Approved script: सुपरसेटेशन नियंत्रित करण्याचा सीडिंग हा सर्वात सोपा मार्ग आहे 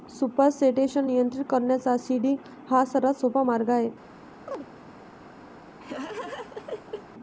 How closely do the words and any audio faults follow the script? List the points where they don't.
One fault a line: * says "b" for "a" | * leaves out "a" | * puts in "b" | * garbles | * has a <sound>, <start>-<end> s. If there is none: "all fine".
* has a chirp, 4.5-4.7 s
* has a laugh, 5.8-7.1 s